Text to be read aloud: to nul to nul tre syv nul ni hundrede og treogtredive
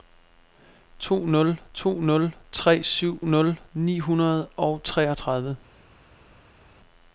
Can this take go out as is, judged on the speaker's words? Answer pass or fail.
pass